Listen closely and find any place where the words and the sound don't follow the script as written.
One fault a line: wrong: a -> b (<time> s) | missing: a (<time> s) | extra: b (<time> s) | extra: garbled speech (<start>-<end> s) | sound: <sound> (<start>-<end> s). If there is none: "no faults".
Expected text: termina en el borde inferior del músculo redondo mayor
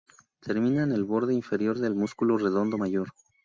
no faults